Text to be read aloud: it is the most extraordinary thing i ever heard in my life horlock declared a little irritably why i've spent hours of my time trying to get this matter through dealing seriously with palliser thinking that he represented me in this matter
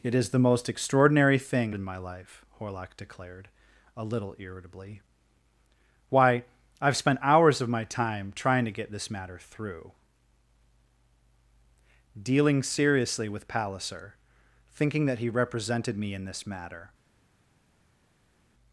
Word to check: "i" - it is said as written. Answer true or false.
false